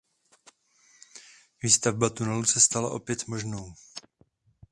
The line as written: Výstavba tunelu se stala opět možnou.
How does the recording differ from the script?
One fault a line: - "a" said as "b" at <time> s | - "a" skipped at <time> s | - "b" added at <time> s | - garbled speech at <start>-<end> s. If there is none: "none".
none